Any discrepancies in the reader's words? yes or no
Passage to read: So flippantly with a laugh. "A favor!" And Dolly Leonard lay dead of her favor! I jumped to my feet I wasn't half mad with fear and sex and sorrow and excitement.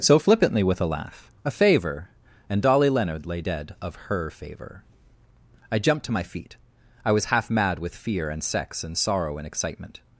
yes